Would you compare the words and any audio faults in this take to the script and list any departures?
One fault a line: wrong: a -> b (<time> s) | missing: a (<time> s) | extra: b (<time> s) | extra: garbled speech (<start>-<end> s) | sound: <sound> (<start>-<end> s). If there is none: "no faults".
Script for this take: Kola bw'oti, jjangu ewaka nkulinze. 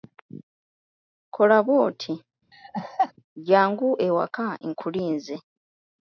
sound: laugh (2.5-3.1 s)